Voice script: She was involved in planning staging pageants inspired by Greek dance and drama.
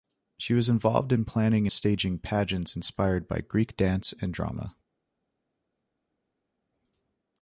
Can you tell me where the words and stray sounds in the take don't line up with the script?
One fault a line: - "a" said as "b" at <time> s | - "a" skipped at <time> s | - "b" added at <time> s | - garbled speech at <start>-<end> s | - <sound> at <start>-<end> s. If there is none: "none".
none